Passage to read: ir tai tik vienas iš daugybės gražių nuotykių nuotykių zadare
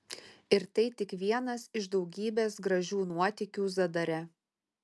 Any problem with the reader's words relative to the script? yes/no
yes